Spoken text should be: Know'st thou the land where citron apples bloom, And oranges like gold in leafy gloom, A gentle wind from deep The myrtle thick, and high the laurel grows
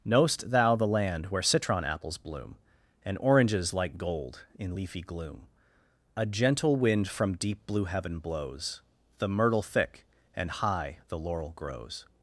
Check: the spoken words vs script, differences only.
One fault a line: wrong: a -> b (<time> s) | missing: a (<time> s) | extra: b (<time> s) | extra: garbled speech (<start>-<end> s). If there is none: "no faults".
extra: blue heaven blows (7.7 s)